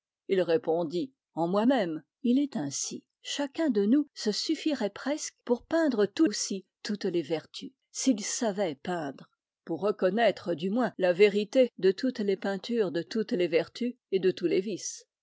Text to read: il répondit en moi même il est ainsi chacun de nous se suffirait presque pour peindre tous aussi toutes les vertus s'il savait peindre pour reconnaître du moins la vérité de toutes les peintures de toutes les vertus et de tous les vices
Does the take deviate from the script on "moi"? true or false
false